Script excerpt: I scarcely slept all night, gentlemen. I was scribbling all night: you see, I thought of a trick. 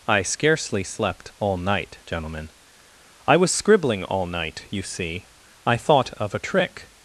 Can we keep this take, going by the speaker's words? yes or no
yes